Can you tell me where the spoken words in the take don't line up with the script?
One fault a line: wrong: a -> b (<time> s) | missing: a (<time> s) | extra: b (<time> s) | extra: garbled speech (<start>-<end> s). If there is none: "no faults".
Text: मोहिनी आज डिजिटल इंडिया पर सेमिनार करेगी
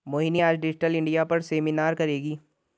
no faults